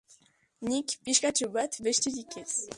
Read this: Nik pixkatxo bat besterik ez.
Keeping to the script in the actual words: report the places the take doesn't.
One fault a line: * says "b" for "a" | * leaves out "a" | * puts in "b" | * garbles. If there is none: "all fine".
all fine